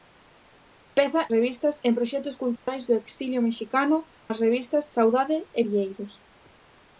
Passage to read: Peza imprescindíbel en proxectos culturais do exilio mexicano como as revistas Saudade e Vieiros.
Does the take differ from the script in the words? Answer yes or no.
yes